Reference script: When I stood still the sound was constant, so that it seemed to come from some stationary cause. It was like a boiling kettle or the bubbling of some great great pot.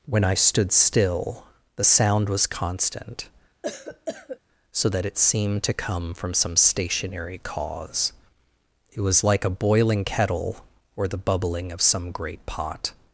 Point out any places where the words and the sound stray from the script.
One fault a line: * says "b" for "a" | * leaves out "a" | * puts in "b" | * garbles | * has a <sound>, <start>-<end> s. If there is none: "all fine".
* has a cough, 3.6-4.4 s
* leaves out "great"